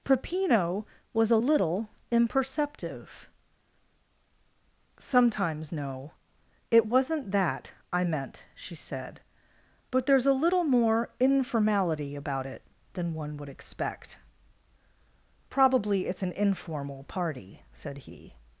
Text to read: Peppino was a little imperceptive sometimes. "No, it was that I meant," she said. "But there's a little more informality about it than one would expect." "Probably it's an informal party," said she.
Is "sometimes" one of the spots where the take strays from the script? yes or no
no